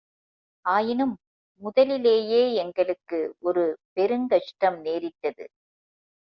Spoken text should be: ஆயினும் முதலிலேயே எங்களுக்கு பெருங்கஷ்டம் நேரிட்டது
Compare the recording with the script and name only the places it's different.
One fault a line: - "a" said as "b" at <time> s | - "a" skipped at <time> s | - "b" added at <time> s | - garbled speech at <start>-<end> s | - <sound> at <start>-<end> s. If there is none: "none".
- "ஒரு" added at 3.4 s